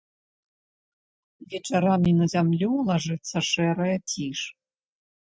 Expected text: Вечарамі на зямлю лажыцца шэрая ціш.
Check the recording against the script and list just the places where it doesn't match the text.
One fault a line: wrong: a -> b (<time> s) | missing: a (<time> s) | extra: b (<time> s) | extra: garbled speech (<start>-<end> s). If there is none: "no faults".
no faults